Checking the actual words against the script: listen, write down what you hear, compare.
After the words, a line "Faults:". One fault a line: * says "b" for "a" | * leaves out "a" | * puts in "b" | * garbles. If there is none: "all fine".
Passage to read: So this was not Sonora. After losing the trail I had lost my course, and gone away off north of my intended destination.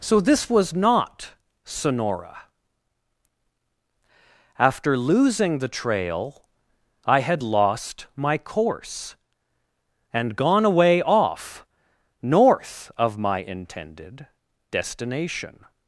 So this was not Sonora. After losing the trail I had lost my course, and gone away off north of my intended destination.
Faults:
all fine